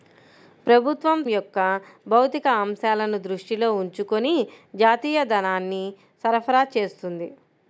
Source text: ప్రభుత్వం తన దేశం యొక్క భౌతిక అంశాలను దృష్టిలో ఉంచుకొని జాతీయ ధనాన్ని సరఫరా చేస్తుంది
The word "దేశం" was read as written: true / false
false